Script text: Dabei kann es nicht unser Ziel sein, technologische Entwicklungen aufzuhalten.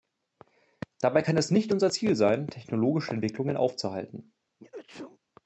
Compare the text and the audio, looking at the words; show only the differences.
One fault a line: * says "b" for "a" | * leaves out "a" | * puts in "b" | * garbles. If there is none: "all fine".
all fine